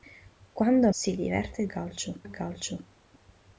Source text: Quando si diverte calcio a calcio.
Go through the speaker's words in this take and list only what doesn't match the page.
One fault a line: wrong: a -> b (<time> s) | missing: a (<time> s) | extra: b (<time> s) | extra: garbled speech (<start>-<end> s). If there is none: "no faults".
no faults